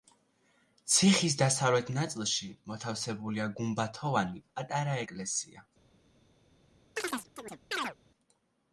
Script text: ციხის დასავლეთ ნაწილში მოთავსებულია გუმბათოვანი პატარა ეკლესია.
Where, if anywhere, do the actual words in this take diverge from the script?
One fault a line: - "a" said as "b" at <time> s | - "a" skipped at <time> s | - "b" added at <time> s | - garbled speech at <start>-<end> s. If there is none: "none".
none